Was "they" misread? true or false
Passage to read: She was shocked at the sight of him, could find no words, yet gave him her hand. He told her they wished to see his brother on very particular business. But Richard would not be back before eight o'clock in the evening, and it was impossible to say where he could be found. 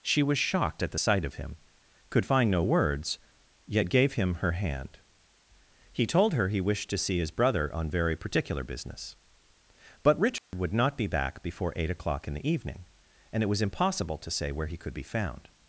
true